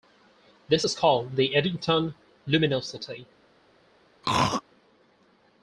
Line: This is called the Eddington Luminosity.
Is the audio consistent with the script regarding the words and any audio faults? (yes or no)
no